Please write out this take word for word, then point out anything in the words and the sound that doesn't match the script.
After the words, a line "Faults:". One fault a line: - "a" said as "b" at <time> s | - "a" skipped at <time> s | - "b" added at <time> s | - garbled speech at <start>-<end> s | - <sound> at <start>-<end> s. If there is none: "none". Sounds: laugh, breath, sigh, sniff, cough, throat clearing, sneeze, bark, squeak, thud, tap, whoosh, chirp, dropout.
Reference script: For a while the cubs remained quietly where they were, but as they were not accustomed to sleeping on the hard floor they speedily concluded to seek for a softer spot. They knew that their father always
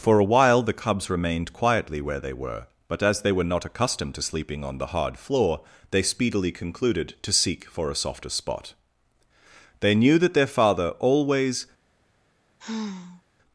For a while the cubs remained quietly where they were, but as they were not accustomed to sleeping on the hard floor they speedily concluded to seek for a softer spot. They knew that their father always
Faults:
- sigh at 12.6-13.2 s